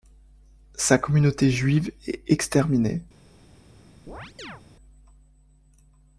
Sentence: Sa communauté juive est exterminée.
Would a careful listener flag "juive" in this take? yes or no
no